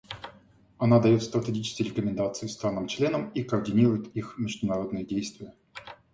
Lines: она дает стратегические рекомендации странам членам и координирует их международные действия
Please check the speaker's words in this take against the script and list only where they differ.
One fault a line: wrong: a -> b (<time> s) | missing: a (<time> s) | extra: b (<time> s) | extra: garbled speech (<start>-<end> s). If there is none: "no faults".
no faults